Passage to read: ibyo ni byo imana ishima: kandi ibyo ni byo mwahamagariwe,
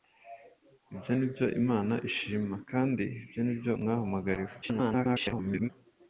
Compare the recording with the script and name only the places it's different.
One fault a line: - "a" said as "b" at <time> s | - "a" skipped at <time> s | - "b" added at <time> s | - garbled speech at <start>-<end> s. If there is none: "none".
- garbled speech at 4.6-5.7 s